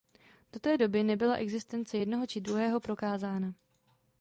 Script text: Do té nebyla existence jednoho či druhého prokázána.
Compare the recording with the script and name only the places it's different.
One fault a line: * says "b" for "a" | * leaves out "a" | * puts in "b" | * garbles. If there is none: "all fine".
* puts in "doby"